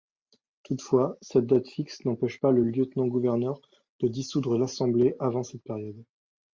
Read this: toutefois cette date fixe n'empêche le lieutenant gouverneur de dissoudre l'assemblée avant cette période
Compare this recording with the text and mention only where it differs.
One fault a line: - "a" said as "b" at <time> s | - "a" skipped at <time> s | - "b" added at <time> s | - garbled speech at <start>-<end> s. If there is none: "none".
- "pas" added at 2.4 s